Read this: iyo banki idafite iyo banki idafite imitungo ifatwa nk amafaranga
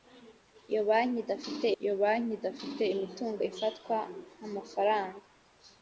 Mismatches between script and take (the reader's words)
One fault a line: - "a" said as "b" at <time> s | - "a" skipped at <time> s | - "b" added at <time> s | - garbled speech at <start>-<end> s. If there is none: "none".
none